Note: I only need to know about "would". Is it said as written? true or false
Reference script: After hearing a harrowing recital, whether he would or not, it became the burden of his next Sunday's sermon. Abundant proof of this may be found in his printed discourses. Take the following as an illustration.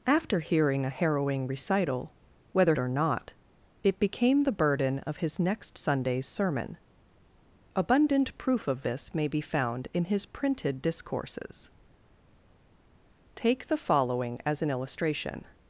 false